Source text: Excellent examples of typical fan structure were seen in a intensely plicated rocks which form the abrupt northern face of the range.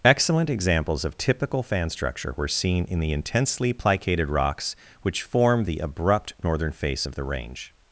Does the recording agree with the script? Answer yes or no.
no